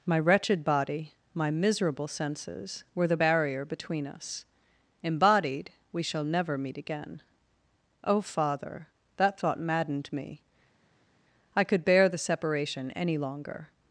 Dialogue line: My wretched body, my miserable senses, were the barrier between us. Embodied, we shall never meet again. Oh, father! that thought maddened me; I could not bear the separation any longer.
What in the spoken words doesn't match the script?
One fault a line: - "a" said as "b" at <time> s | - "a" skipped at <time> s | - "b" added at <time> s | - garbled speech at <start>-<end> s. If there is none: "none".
- "not" skipped at 11.8 s